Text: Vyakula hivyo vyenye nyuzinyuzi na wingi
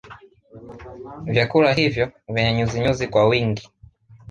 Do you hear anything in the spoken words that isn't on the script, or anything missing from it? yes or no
yes